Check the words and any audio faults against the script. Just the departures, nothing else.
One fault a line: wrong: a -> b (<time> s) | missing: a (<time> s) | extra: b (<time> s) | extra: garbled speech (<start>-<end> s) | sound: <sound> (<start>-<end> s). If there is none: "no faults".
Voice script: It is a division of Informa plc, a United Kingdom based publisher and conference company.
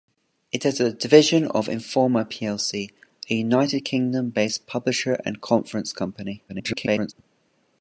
extra: garbled speech (6.5-7.1 s)